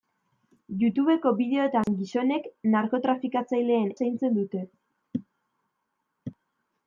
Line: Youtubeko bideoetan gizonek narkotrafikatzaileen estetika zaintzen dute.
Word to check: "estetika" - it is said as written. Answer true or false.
false